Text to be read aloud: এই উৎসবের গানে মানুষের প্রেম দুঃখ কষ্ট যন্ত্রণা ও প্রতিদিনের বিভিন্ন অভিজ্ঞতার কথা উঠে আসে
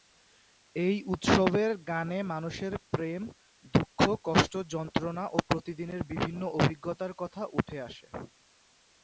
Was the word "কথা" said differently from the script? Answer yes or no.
no